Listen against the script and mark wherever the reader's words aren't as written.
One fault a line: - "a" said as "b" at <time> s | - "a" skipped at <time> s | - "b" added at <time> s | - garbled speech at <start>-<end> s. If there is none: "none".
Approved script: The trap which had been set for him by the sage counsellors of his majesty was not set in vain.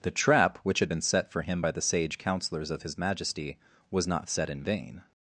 none